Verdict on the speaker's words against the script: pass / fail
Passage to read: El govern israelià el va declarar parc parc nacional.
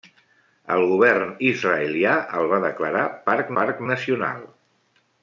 pass